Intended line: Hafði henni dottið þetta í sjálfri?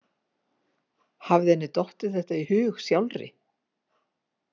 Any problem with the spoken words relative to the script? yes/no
yes